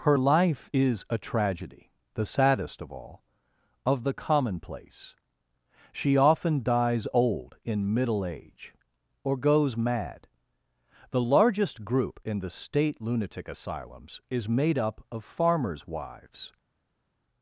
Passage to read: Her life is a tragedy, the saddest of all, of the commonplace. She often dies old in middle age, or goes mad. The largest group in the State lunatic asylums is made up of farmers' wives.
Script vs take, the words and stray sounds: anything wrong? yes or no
no